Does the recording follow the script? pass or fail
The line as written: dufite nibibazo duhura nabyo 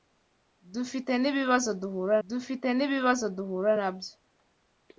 fail